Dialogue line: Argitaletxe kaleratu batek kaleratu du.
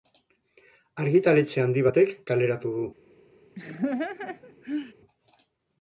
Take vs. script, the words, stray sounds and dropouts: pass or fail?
fail